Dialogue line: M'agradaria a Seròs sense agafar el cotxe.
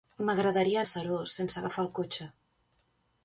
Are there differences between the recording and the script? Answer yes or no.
no